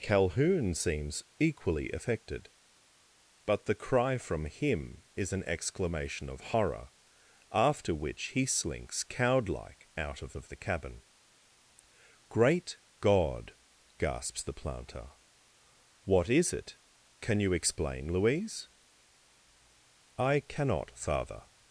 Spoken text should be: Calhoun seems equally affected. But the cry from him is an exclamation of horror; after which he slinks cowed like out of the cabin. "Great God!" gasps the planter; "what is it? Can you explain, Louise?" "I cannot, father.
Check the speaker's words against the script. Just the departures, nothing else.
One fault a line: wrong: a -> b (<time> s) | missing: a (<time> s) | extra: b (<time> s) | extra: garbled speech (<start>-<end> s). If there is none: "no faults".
extra: of (10.3 s)